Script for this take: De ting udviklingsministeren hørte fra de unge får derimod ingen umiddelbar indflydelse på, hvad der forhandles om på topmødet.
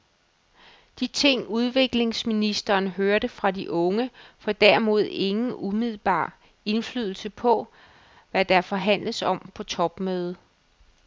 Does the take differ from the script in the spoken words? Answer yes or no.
no